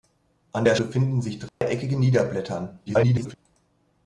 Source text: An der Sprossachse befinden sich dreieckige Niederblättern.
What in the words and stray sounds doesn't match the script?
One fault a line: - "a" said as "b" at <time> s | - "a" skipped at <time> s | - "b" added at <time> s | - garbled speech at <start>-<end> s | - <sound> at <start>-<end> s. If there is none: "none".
- "Sprossachse" skipped at 0.8 s
- dropout at 1.5-1.6 s
- garbled speech at 2.9-3.3 s